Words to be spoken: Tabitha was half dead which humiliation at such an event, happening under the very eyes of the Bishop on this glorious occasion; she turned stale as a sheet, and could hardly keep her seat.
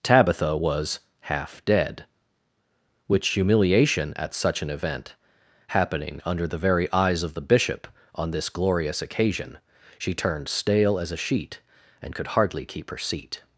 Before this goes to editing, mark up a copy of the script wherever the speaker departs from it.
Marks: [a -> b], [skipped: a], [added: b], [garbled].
Tabitha was half dead which humiliation at such an event, happening under the very eyes of the Bishop on this glorious occasion; she turned stale as a sheet, and could hardly keep her seat.